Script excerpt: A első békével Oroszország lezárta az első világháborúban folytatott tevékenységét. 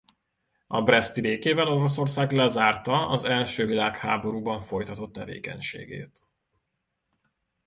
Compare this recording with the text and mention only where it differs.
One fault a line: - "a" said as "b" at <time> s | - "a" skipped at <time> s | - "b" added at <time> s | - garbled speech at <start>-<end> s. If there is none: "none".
- "első" said as "breszti" at 0.8 s